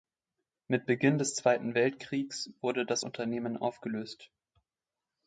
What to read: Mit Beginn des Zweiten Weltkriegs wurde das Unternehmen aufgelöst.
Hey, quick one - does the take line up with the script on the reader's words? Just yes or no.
yes